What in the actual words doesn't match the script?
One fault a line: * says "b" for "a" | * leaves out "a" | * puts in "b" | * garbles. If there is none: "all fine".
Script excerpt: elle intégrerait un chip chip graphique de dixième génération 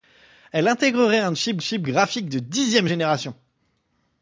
all fine